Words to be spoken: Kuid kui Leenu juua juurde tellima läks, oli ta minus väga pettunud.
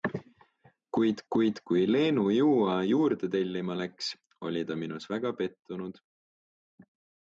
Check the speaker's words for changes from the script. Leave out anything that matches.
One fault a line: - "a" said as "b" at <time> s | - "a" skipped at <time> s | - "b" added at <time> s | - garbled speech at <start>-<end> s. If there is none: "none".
- "kuid" added at 1.4 s